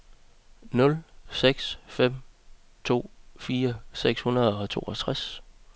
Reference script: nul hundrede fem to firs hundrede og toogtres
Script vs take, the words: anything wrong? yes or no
yes